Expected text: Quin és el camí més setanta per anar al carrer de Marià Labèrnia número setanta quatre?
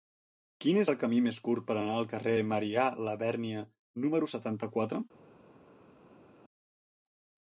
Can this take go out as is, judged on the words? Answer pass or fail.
fail